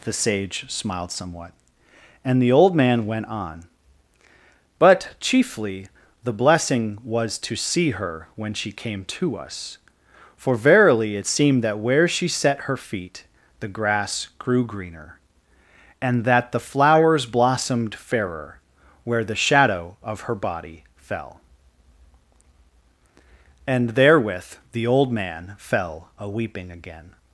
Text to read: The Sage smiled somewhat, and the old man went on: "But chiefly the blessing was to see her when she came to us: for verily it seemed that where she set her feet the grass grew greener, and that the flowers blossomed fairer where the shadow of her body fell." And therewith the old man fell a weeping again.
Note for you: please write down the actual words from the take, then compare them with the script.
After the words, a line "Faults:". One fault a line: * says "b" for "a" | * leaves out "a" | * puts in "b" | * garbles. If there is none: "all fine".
The Sage smiled somewhat, and the old man went on: "But chiefly the blessing was to see her when she came to us: for verily it seemed that where she set her feet the grass grew greener, and that the flowers blossomed fairer where the shadow of her body fell." And therewith the old man fell a weeping again.
Faults:
all fine